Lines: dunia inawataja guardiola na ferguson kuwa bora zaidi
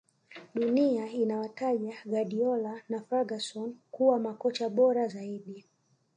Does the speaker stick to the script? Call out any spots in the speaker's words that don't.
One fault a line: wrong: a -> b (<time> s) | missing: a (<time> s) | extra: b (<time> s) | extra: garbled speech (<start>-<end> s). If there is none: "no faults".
extra: makocha (4.2 s)